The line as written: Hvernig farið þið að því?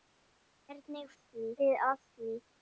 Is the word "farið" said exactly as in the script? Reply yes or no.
no